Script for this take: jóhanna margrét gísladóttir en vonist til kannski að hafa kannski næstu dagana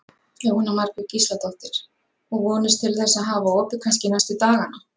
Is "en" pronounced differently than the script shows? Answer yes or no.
yes